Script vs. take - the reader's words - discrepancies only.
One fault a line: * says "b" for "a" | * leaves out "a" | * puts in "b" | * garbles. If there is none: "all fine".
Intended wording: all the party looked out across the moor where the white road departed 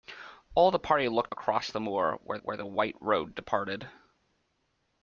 * leaves out "out"
* puts in "where"